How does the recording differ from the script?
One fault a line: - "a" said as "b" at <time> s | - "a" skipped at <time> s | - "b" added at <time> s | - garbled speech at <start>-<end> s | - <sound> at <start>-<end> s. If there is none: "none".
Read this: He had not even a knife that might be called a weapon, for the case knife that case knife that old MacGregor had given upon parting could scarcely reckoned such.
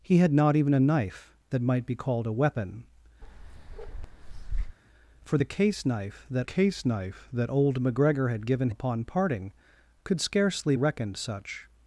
- bark at 3.2-4.8 s